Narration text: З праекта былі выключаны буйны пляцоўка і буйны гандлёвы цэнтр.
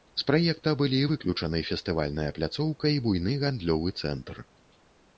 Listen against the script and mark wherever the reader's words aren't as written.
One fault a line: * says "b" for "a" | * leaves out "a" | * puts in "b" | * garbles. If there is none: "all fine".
* says "фестывальная" for "буйны"